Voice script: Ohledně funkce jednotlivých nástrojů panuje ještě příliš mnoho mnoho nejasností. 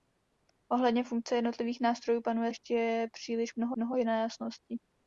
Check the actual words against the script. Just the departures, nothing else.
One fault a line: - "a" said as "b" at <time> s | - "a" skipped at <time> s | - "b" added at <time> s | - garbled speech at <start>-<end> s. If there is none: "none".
none